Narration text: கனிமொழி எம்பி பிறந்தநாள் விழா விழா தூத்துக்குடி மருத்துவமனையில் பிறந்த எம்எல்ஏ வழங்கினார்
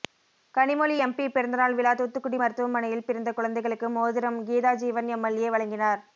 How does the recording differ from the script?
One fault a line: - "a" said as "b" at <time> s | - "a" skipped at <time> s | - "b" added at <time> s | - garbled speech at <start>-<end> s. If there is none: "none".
- "விழா" skipped at 1.9 s
- "குழந்தைகளுக்கு மோதிரம் கீதாஜீவன்" added at 3.3 s